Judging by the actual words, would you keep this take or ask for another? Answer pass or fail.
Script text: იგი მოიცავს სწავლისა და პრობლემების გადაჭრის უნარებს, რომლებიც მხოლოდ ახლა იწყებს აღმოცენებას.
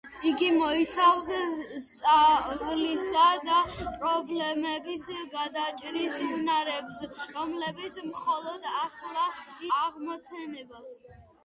fail